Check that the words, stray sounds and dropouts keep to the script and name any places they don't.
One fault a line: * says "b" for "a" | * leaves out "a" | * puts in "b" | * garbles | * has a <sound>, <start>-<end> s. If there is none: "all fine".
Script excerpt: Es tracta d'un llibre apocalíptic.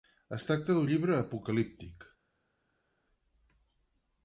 all fine